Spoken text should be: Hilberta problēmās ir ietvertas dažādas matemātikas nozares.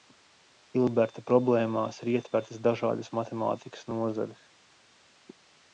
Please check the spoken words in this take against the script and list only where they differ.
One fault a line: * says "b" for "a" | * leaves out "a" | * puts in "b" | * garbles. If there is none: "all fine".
all fine